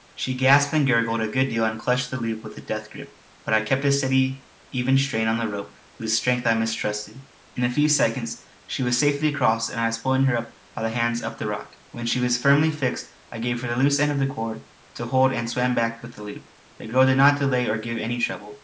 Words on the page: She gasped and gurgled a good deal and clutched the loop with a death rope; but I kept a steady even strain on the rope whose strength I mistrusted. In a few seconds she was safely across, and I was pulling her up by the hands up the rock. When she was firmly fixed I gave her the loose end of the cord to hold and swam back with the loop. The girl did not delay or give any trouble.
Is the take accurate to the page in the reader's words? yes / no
no